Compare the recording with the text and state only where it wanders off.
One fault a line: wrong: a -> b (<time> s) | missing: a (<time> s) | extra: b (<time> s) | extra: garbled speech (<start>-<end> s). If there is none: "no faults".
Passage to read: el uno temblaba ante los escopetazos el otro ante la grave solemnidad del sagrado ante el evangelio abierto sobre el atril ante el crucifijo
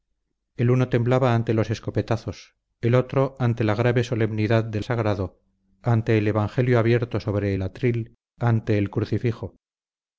no faults